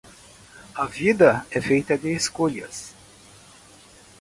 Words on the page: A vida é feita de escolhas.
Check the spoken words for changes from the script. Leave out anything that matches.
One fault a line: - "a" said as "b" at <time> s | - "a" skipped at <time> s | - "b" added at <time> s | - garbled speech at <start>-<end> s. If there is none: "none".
none